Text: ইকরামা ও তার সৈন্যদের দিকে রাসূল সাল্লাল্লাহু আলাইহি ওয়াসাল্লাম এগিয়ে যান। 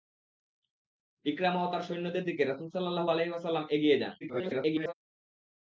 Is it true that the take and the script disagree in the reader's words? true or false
true